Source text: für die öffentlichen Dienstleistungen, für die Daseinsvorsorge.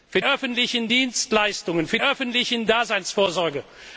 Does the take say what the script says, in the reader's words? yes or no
no